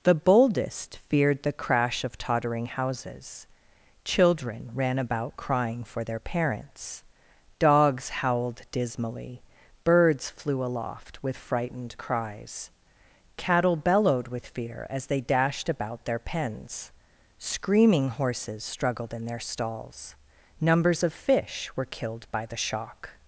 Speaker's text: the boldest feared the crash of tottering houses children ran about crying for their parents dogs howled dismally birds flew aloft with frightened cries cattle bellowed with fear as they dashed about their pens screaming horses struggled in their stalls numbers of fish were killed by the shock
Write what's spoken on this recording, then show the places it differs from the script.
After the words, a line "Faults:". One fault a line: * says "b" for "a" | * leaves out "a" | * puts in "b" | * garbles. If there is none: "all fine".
the boldest feared the crash of tottering houses children ran about crying for their parents dogs howled dismally birds flew aloft with frightened cries cattle bellowed with fear as they dashed about their pens screaming horses struggled in their stalls numbers of fish were killed by the shock
Faults:
all fine